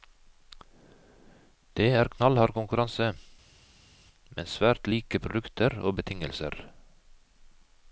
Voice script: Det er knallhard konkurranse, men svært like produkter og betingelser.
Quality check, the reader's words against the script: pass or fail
pass